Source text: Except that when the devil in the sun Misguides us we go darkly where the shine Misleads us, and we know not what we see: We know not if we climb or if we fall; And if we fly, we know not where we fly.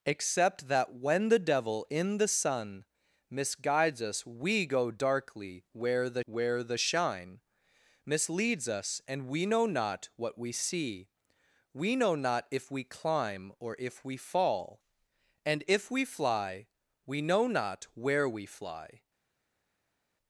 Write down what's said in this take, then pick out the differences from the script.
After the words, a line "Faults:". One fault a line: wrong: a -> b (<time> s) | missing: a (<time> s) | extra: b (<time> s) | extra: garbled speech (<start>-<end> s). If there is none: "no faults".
Except that when the devil in the sun Misguides us we go darkly where the where the shine Misleads us, and we know not what we see: We know not if we climb or if we fall; And if we fly, we know not where we fly.
Faults:
extra: where the (6.2 s)